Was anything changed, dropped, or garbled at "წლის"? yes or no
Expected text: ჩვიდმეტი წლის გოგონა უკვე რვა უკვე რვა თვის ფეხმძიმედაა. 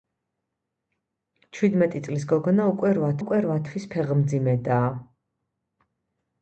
no